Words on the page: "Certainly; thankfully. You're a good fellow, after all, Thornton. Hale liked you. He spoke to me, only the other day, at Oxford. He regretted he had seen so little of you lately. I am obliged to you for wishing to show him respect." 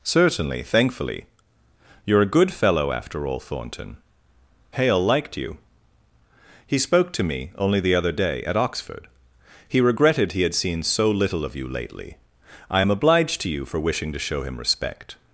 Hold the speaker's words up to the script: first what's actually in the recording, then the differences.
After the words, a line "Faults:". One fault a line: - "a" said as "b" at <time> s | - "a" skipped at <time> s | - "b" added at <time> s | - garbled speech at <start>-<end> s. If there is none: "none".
"Certainly; thankfully. You're a good fellow, after all, Thornton. Hale liked you. He spoke to me, only the other day, at Oxford. He regretted he had seen so little of you lately. I am obliged to you for wishing to show him respect."
Faults:
none